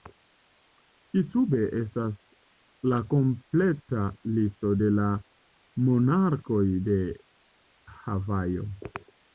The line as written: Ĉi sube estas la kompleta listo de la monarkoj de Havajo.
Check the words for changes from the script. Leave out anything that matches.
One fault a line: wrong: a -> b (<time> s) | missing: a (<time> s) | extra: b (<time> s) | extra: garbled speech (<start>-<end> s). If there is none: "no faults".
no faults